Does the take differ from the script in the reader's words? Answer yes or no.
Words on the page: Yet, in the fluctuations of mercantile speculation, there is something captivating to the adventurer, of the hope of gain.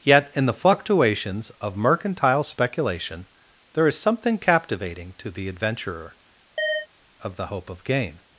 no